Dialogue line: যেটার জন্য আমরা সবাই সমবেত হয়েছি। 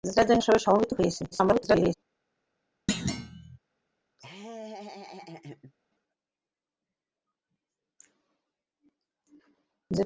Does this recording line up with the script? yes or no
no